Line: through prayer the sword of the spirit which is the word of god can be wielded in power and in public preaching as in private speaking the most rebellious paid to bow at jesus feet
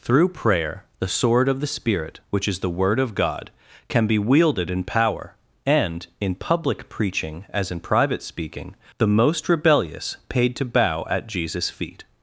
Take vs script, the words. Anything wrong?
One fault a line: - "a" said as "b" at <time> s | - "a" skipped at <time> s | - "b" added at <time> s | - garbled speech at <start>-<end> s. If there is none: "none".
none